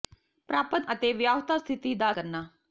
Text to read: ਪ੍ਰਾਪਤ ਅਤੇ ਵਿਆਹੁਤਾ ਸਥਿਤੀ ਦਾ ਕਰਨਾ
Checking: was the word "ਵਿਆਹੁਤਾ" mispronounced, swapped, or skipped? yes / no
no